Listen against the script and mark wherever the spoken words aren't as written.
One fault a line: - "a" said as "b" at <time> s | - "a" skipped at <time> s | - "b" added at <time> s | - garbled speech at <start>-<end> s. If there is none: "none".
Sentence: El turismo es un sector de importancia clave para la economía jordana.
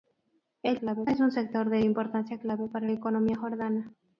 - "turismo" said as "clave" at 0.8 s
- "la" skipped at 2.9 s